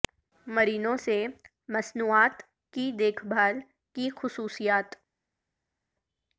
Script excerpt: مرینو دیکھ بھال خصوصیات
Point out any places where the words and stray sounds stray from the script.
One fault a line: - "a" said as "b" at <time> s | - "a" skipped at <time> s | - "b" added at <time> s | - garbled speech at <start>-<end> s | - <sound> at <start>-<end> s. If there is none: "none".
- "سے مصنوعات کی" added at 1.0 s
- "کی" added at 4.0 s